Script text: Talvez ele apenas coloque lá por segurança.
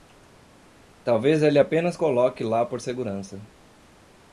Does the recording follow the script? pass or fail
pass